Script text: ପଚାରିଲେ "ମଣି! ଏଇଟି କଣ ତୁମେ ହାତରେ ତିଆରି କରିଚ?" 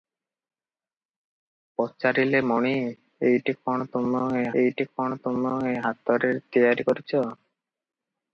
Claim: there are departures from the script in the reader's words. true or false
true